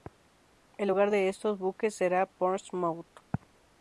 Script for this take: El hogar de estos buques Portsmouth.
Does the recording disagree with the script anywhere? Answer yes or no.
yes